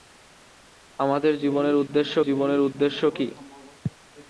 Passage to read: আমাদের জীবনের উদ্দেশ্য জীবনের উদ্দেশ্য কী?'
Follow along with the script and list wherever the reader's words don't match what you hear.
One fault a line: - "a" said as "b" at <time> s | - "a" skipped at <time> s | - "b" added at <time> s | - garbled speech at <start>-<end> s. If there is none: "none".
none